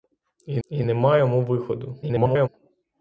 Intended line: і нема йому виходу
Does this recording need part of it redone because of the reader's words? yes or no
yes